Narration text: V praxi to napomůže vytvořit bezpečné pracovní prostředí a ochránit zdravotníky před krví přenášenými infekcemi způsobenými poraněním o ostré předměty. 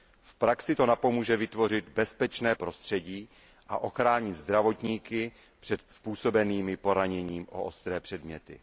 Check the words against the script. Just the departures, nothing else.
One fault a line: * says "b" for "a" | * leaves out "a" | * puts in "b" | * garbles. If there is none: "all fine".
* leaves out "pracovní"
* leaves out "krví přenášenými infekcemi"